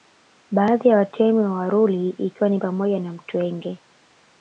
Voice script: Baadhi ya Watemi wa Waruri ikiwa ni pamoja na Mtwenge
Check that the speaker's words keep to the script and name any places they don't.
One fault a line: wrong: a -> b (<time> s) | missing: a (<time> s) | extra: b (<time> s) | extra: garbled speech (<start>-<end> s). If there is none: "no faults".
no faults